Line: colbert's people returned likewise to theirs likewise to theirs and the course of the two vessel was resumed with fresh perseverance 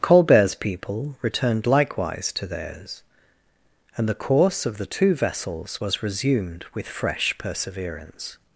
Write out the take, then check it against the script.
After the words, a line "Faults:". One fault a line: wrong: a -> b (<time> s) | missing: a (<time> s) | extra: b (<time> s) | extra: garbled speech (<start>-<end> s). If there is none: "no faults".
colbert's people returned likewise to theirs and the course of the two vessels was resumed with fresh perseverance
Faults:
missing: likewise to theirs (3.0 s)
wrong: vessel -> vessels (5.1 s)